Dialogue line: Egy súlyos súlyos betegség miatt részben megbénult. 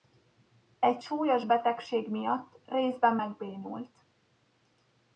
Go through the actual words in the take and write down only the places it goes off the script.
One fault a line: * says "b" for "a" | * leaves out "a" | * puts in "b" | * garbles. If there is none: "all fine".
* leaves out "súlyos"